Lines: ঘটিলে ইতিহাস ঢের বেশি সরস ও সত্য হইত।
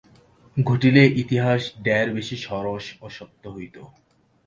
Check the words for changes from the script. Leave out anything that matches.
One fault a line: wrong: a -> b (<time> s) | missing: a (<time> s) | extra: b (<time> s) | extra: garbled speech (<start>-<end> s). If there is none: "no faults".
no faults